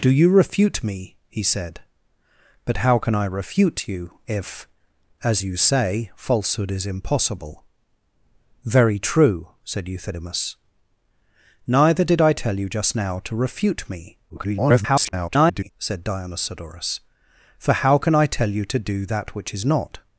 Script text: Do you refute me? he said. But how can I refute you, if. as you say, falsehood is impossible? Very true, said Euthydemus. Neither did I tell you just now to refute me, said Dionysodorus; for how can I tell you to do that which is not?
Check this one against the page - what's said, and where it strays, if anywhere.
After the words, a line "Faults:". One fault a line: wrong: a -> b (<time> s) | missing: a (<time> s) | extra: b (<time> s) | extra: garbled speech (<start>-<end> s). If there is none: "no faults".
Do you refute me? he said. But how can I refute you, if. as you say, falsehood is impossible? Very true, said Euthydemus. Neither did I tell you just now to refute me, [garbled] said Dionysodorus; for how can I tell you to do that which is not?
Faults:
extra: garbled speech (14.3-15.7 s)